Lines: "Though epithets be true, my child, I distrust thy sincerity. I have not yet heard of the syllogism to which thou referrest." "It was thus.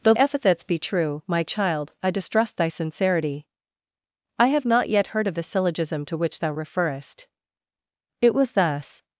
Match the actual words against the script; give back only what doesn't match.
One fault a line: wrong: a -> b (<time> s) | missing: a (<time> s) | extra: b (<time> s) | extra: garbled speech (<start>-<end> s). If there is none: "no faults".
no faults